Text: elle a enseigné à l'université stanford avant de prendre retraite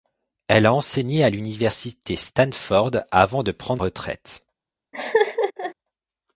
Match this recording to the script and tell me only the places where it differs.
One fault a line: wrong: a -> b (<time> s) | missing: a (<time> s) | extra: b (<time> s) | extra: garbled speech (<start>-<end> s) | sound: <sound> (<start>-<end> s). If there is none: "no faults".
sound: laugh (4.9-5.7 s)